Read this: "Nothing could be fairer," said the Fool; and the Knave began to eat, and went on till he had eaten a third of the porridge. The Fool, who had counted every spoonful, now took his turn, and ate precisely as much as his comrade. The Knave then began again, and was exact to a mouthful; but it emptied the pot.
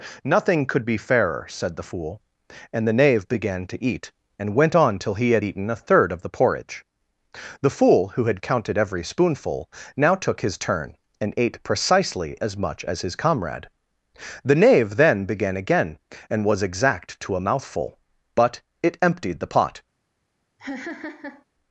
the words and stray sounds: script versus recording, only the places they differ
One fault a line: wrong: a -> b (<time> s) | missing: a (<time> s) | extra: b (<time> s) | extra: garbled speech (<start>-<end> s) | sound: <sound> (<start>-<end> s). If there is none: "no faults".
sound: laugh (20.6-21.4 s)